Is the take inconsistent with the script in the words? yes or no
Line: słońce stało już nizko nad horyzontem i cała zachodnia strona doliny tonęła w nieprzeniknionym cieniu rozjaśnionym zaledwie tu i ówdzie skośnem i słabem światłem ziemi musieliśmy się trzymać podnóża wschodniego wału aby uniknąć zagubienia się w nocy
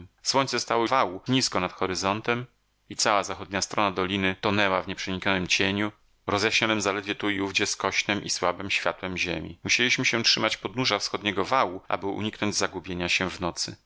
yes